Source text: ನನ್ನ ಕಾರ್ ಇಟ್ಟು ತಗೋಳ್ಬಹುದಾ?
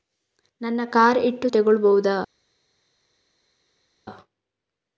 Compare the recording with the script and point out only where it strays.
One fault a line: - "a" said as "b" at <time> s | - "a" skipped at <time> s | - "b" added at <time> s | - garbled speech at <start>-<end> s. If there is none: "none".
none